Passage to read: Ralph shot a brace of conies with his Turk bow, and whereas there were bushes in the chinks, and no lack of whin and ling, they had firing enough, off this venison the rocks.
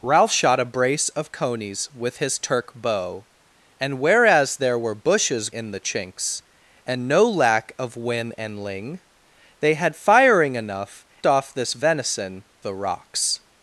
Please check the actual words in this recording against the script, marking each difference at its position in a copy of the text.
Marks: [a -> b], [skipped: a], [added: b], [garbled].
Ralph shot a brace of conies with his Turk bow, and whereas there were bushes in the chinks, and no lack of whin and ling, they had firing enough, off this venison the rocks.